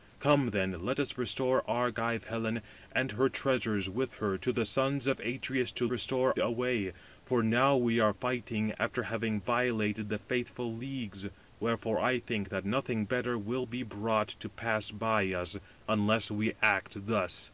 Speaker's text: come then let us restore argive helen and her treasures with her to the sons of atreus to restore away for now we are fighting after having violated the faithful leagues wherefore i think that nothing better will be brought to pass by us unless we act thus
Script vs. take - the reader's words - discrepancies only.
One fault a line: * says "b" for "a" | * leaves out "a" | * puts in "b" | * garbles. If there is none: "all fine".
all fine